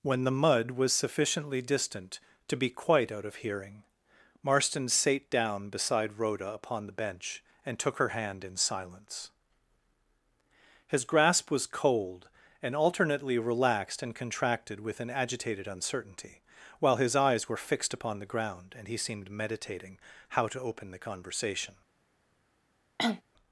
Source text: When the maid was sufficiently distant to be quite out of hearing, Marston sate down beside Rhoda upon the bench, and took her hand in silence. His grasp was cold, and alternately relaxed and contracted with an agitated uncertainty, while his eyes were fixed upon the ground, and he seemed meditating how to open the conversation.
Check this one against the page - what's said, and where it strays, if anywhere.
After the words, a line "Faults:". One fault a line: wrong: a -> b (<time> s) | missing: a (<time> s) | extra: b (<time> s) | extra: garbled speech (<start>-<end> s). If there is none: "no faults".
When the mud was sufficiently distant to be quite out of hearing, Marston sate down beside Rhoda upon the bench, and took her hand in silence. His grasp was cold, and alternately relaxed and contracted with an agitated uncertainty, while his eyes were fixed upon the ground, and he seemed meditating how to open the conversation.
Faults:
wrong: maid -> mud (0.3 s)